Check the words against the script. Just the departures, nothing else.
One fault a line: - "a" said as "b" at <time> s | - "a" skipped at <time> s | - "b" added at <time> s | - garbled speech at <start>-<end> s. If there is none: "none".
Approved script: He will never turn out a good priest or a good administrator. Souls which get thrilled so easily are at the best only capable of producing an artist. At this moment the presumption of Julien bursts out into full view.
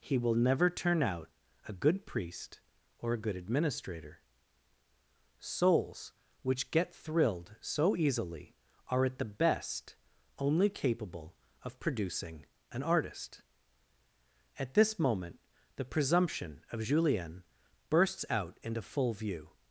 none